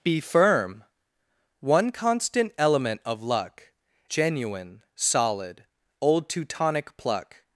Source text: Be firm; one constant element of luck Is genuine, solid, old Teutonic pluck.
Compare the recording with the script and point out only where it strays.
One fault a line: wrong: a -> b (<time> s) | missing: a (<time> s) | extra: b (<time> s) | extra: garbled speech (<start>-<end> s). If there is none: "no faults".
missing: Is (3.7 s)